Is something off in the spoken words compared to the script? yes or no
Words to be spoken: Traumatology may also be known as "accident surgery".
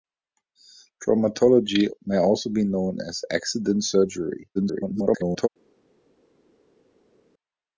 yes